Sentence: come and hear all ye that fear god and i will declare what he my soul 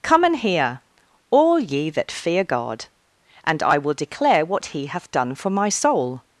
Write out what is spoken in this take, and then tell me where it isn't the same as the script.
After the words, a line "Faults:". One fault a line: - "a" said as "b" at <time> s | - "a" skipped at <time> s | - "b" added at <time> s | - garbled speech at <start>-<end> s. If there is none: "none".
come and hear all ye that fear god and i will declare what he hath done for my soul
Faults:
- "hath done for" added at 4.9 s